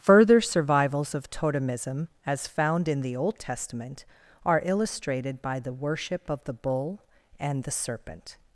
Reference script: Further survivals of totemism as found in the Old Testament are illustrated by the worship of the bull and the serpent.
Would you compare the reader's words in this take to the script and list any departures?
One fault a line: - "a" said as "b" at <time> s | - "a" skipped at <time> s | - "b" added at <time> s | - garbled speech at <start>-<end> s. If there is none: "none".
none